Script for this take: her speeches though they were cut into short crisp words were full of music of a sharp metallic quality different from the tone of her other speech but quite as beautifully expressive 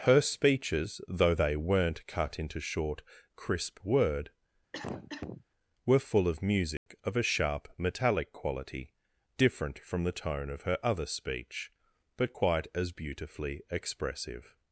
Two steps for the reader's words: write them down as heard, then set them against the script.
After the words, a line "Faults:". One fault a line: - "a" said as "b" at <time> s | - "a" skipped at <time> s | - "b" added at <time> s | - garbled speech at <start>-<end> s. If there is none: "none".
her speeches though they weren't cut into short crisp word were full of music of a sharp metallic quality different from the tone of her other speech but quite as beautifully expressive
Faults:
- "were" said as "weren't" at 1.6 s
- "words" said as "word" at 3.8 s